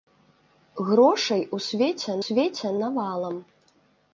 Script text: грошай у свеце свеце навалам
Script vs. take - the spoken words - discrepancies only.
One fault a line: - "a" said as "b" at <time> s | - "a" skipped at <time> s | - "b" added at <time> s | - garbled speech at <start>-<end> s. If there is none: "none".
none